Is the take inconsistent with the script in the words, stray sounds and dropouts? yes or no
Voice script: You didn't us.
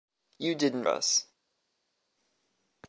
no